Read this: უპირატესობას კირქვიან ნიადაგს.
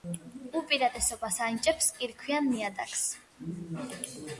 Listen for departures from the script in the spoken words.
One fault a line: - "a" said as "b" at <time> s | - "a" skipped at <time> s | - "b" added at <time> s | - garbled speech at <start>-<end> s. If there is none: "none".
- "ანიჭებს" added at 1.5 s